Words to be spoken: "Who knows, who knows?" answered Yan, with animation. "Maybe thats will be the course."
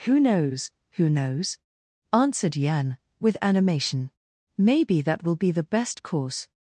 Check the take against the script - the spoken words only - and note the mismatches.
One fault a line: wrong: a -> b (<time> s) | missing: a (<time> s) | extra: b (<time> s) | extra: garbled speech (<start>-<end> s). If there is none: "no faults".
wrong: thats -> that (5.0 s)
extra: best (5.6 s)